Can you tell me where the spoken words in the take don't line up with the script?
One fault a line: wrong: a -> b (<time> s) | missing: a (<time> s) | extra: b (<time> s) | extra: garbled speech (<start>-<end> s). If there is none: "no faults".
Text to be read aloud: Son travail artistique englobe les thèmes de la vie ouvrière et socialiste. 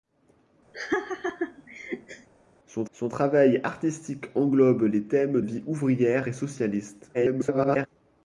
extra: son (2.9 s)
missing: de la (5.4 s)
extra: garbled speech (7.1-7.9 s)